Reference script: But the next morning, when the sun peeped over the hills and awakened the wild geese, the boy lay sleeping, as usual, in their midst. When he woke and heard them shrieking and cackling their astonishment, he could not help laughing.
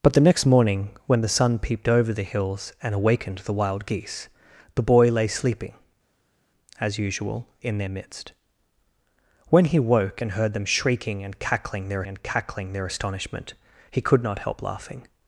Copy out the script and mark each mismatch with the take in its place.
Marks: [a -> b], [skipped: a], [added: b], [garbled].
But the next morning, when the sun peeped over the hills and awakened the wild geese, the boy lay sleeping, as usual, in their midst. When he woke and heard them shrieking and cackling their [added: and cackling their] astonishment, he could not help laughing.